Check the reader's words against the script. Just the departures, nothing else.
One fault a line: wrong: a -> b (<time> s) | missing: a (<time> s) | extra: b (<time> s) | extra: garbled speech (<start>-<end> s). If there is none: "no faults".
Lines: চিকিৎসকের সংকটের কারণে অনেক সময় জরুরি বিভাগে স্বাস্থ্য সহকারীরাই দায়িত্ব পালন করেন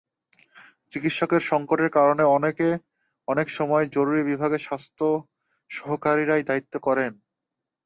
missing: পালন (6.7 s)